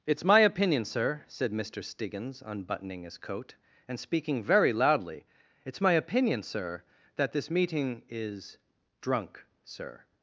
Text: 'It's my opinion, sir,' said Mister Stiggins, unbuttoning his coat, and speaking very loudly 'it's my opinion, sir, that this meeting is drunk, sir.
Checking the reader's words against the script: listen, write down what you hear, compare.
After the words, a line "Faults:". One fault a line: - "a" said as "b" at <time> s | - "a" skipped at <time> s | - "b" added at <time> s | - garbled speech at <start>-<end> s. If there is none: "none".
'It's my opinion, sir,' said Mister Stiggins, unbuttoning his coat, and speaking very loudly 'it's my opinion, sir, that this meeting is drunk, sir.
Faults:
none